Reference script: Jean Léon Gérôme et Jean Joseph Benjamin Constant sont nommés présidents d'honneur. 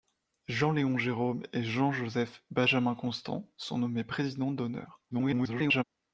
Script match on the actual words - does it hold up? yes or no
no